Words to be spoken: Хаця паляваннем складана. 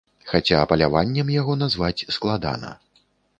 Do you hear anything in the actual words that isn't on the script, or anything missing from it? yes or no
yes